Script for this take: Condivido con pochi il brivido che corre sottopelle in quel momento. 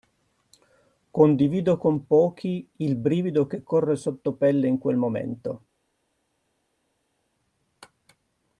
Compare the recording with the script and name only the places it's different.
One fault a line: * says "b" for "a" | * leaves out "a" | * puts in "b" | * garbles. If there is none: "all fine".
all fine